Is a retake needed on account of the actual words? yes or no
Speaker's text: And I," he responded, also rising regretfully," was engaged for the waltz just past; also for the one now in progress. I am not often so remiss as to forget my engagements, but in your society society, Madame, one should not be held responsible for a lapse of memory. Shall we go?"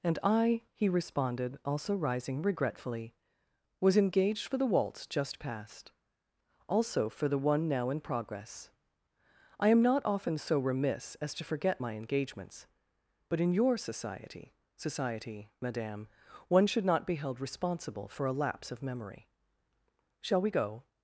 no